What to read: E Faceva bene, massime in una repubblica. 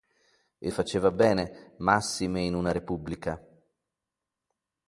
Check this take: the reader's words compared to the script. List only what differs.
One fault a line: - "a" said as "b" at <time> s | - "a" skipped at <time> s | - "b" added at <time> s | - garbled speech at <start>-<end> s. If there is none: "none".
none